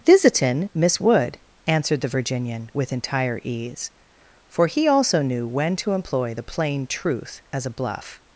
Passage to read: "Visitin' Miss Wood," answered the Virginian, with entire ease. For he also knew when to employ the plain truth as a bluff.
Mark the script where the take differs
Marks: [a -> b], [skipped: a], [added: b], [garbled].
"Visitin' Miss Wood," answered the Virginian, with entire ease. For he also knew when to employ the plain truth as a bluff.